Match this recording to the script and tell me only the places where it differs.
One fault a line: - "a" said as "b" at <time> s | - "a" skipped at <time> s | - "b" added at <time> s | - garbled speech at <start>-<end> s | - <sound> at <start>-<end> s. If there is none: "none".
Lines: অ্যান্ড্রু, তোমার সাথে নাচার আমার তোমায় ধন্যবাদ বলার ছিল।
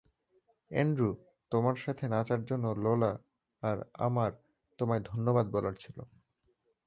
- "জন্য লোলা আর" added at 2.5 s